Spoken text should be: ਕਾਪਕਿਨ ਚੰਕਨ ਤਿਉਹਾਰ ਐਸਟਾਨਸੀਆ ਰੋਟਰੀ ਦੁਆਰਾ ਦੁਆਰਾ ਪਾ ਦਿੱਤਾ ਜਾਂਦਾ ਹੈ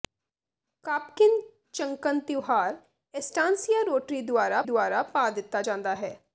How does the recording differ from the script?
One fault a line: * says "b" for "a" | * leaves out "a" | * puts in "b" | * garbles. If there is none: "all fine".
all fine